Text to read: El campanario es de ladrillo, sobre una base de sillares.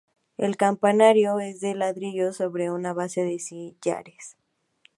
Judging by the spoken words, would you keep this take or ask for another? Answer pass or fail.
pass